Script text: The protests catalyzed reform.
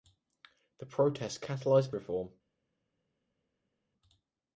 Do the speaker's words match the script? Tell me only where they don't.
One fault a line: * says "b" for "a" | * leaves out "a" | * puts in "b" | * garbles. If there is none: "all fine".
all fine